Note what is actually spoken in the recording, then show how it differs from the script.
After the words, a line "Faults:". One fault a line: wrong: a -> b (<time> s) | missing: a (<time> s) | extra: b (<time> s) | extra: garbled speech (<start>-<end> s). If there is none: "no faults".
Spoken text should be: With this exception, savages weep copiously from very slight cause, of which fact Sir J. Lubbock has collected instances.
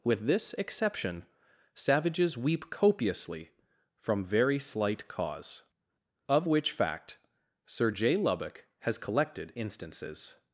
With this exception, savages weep copiously from very slight cause, of which fact Sir J. Lubbock has collected instances.
Faults:
no faults